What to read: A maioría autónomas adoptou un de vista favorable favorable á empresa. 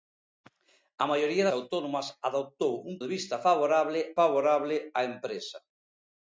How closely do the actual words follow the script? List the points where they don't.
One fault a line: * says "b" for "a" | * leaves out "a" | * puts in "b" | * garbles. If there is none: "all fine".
all fine